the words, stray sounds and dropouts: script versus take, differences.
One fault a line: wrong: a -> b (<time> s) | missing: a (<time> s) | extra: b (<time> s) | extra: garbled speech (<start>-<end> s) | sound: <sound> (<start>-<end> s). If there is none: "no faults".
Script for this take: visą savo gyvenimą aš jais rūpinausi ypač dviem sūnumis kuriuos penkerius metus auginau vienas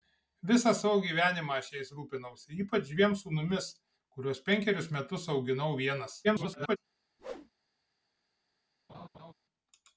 extra: garbled speech (6.2-6.8 s)
sound: whoosh (7.2-7.5 s)
sound: laugh (8.9-9.3 s)